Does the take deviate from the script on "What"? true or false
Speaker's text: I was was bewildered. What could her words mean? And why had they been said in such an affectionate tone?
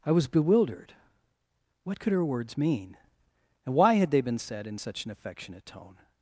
false